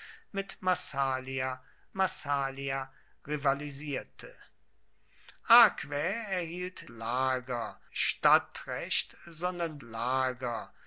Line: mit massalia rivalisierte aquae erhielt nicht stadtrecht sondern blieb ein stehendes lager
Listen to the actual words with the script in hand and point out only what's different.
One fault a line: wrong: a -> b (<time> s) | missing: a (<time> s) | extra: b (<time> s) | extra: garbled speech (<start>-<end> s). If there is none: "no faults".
extra: massalia (1.9 s)
wrong: nicht -> lager (6.9 s)
missing: blieb ein stehendes (9.8 s)